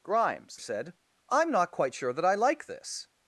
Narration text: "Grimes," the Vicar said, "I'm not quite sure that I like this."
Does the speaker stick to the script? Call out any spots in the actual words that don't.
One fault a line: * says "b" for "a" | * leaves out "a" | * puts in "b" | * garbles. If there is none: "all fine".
* leaves out "the Vicar"